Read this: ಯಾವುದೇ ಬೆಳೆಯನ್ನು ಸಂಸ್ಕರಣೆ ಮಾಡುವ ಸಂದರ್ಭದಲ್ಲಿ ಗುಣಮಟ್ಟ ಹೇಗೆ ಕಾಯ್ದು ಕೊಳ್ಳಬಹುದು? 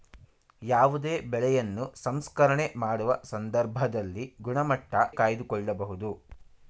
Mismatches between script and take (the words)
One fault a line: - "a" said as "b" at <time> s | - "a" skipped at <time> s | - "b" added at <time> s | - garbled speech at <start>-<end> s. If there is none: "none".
- "ಹೇಗೆ" skipped at 4.9 s